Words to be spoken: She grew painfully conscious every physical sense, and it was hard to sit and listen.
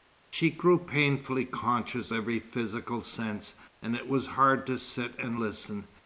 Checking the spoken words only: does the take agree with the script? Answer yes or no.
yes